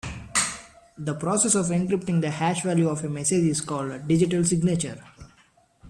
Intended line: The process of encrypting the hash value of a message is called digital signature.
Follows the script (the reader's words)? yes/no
yes